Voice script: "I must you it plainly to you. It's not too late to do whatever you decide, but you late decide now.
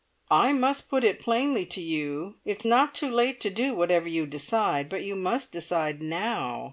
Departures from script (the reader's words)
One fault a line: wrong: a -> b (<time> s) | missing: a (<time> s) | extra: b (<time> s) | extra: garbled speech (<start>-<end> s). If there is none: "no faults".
wrong: you -> put (0.9 s)
wrong: late -> must (5.2 s)